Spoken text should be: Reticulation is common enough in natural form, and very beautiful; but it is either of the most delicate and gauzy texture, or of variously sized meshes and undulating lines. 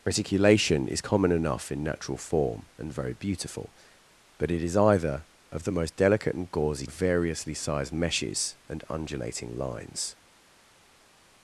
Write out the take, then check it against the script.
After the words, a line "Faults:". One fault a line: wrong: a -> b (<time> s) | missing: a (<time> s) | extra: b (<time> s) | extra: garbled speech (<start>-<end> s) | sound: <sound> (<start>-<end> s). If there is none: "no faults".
Reticulation is common enough in natural form, and very beautiful; but it is either of the most delicate and gauzy of variously sized meshes and undulating lines.
Faults:
missing: texture or (6.9 s)